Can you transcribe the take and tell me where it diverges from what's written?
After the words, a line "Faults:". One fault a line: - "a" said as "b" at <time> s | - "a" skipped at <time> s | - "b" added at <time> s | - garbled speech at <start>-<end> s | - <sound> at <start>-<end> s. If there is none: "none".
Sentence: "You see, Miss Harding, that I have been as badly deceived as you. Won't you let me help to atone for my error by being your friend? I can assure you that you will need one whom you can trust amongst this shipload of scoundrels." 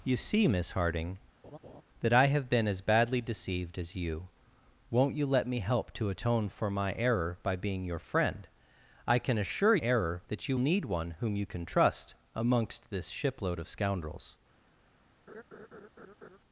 "You see, Miss Harding, that I have been as badly deceived as you. Won't you let me help to atone for my error by being your friend? I can assure error that you need one whom you can trust amongst this shipload of scoundrels."
Faults:
- laugh at 1.4-1.8 s
- "you" said as "error" at 9.8 s
- "will" skipped at 10.6 s
- laugh at 15.3-16.4 s